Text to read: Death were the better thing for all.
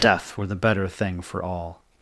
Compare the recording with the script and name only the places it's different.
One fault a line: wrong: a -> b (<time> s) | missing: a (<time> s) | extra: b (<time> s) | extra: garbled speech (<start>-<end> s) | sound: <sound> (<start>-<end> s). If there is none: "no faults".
no faults